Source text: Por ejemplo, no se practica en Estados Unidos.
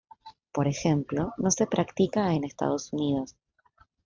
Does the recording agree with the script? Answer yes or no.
yes